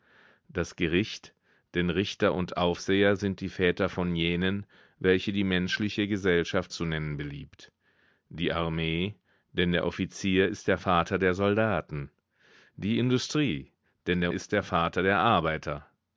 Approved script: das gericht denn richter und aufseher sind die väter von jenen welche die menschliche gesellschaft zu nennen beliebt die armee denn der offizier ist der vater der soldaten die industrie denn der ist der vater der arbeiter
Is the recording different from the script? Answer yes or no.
no